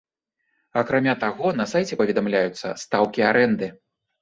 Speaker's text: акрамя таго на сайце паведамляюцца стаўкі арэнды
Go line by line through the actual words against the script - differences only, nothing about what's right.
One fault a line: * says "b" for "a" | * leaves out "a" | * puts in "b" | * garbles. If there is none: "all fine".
all fine